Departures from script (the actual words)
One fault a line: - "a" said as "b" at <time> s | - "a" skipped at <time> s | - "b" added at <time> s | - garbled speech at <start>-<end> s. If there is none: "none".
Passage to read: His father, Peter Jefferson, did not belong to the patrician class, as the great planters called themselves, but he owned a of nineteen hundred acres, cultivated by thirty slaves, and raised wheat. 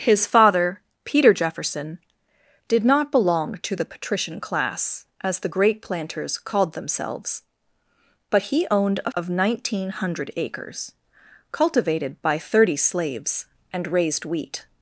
none